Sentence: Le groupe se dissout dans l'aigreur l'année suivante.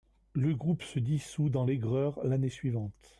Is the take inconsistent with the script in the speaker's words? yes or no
no